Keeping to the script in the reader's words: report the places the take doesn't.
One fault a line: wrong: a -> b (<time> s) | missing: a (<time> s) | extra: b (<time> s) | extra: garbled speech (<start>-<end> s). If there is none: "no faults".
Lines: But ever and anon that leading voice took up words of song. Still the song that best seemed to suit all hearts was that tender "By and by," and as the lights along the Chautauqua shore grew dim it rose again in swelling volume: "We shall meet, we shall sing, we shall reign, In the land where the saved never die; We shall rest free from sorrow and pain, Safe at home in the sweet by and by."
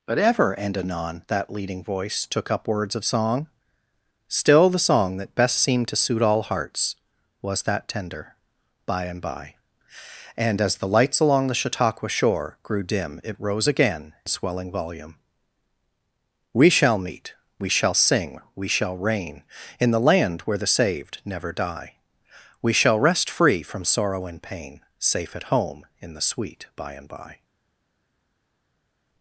missing: in (14.1 s)